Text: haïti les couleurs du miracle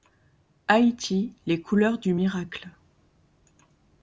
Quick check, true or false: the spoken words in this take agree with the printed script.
true